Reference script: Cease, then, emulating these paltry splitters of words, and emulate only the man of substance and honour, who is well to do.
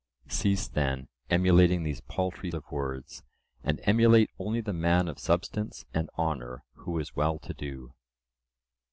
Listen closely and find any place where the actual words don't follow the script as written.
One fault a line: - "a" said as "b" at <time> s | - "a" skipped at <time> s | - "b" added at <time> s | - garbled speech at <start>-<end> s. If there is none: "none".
- "splitters" skipped at 2.5 s